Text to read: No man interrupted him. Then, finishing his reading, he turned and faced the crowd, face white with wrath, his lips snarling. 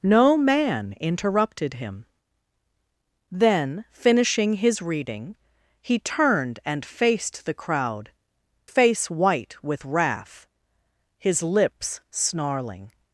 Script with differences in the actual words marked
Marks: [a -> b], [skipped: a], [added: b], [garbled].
No man interrupted him. Then, finishing his reading, he turned and faced the crowd, face white with wrath, his lips snarling.